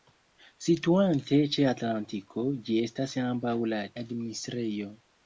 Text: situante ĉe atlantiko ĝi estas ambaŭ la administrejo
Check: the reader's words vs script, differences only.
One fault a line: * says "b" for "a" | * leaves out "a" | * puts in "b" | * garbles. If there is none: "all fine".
all fine